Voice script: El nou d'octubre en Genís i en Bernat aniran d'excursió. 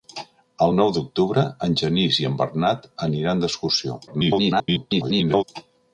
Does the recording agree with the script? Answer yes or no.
no